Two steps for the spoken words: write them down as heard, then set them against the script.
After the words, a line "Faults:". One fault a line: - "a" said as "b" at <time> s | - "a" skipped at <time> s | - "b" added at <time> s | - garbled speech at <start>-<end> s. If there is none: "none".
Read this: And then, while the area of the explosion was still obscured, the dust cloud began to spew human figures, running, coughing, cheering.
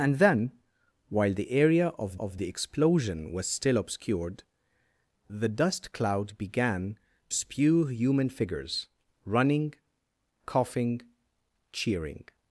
And then, while the area of of the explosion was still obscured, the dust cloud began spew human figures, running, coughing, cheering.
Faults:
- "of" added at 2.2 s
- "to" skipped at 7.0 s